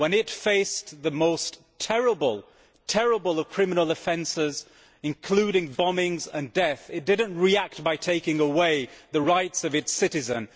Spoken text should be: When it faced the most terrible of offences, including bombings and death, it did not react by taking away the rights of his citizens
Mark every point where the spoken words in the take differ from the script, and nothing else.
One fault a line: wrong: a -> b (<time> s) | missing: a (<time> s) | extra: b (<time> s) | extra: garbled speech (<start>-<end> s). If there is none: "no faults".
extra: criminal (3.5 s)
wrong: his -> its (9.8 s)